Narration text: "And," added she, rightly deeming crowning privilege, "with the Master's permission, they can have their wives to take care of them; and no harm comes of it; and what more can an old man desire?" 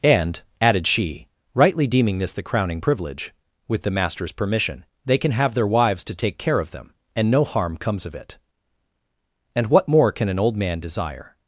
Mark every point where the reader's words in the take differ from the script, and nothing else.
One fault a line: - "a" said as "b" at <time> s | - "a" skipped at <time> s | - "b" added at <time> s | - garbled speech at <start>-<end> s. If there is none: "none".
- "this the" added at 2.2 s